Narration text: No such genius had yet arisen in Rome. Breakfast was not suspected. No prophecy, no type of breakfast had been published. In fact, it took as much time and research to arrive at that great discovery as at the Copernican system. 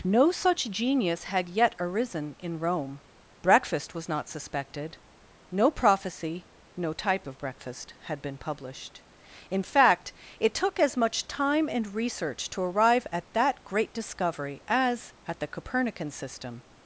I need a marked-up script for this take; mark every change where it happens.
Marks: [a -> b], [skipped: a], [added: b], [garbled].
No such genius had yet arisen in Rome. Breakfast was not suspected. No prophecy, no type of breakfast had been published. In fact, it took as much time and research to arrive at that great discovery as at the Copernican system.